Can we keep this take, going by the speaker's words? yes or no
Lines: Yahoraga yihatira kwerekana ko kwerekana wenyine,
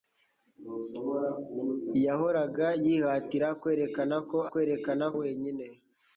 yes